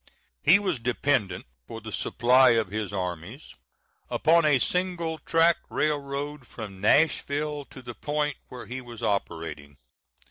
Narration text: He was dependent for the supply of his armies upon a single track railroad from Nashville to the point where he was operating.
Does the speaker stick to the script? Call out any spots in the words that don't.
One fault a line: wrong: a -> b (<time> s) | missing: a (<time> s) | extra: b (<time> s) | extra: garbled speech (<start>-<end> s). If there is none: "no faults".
no faults